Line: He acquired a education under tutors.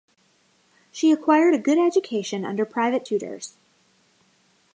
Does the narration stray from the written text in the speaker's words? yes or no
yes